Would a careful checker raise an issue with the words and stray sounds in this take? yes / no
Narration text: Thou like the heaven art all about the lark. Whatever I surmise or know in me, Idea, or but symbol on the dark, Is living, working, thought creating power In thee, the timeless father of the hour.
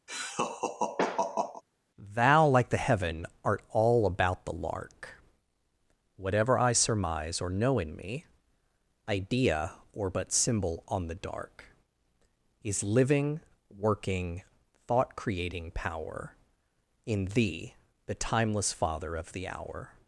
yes